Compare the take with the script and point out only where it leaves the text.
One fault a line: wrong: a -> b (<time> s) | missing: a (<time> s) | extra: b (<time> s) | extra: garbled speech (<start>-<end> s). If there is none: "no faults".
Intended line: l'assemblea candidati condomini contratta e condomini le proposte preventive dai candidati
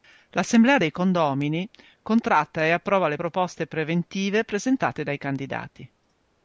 wrong: candidati -> dei (0.8 s)
wrong: condomini -> approva (2.7 s)
extra: presentate (4.4 s)